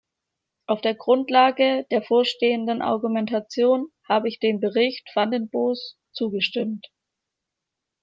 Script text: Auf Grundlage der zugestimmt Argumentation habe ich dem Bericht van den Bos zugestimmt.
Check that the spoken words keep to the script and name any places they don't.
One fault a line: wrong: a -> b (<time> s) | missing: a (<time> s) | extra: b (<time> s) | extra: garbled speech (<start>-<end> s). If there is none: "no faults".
extra: der (0.8 s)
wrong: zugestimmt -> vorstehenden (2.0 s)